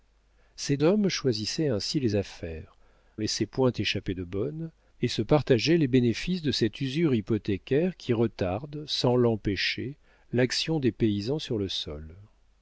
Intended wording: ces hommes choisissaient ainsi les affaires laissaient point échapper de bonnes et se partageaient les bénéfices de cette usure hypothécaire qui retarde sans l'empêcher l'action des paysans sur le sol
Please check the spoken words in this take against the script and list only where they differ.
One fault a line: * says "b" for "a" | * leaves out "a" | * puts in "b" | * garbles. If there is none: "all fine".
all fine